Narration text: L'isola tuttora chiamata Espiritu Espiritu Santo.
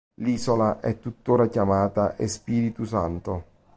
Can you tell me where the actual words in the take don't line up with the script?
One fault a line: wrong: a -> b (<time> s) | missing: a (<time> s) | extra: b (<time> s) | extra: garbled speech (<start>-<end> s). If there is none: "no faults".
extra: è (0.8 s)
missing: Espiritu (2.9 s)